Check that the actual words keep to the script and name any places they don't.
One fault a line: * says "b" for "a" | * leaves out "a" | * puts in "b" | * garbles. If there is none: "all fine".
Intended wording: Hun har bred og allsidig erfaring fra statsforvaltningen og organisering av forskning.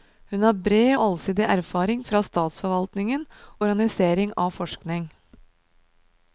* leaves out "og"
* leaves out "og"